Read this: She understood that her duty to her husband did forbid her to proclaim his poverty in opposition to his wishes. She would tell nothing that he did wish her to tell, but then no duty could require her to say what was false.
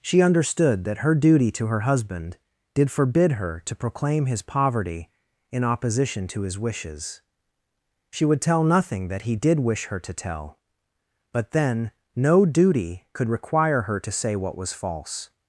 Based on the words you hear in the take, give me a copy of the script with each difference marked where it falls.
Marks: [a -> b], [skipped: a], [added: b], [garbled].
She understood that her duty to her husband did forbid her to proclaim his poverty in opposition to his wishes. She would tell nothing that he did wish her to tell, but then no duty could require her to say what was false.